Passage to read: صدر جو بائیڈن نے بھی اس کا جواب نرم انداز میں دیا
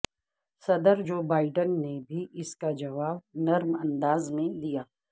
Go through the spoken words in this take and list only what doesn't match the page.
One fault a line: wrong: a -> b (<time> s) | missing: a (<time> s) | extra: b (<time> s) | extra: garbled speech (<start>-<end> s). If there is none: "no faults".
no faults